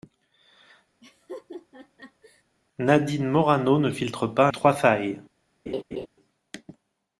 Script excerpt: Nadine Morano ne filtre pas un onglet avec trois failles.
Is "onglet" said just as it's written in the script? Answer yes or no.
no